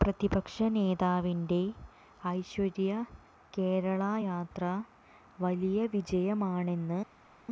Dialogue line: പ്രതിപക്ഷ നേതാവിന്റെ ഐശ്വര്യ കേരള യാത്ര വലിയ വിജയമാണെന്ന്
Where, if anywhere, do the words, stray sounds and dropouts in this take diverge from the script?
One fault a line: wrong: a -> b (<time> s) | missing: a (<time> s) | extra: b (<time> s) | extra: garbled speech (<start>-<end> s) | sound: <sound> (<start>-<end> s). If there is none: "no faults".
no faults